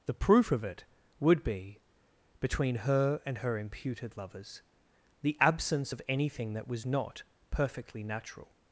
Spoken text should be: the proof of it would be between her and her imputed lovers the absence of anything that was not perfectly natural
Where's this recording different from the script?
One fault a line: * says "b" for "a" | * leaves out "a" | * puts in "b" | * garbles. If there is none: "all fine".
all fine